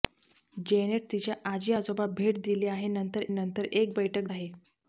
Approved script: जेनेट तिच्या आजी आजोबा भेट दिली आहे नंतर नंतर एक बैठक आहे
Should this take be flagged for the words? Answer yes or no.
no